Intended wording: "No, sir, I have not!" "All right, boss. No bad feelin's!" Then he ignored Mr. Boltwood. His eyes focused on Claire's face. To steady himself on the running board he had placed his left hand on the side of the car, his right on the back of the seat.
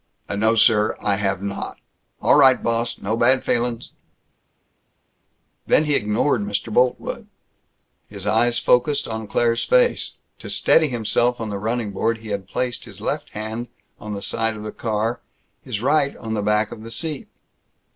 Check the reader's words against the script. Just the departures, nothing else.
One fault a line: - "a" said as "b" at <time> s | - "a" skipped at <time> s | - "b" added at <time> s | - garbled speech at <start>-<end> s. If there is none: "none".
none